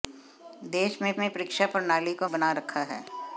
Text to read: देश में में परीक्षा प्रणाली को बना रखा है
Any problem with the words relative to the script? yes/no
no